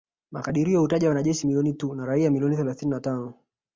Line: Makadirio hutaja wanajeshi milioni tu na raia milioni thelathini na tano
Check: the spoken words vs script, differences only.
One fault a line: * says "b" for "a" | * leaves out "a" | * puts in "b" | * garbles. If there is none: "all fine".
all fine